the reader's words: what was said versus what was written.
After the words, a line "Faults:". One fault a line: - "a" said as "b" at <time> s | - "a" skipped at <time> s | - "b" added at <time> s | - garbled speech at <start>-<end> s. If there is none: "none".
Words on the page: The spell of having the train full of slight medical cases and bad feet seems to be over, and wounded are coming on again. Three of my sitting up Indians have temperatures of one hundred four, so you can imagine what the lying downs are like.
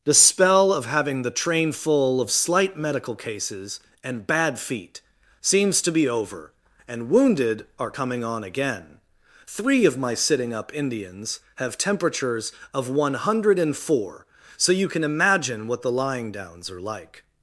The spell of having the train full of slight medical cases and bad feet seems to be over, and wounded are coming on again. Three of my sitting up Indians have temperatures of one hundred four, so you can imagine what the lying downs are like.
Faults:
none